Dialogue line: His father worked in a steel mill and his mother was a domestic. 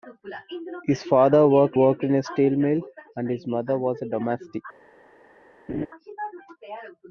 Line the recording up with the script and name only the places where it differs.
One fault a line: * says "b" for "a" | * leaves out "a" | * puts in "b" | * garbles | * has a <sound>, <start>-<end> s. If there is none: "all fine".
* puts in "worked"
* has a laugh, 5.7-5.9 s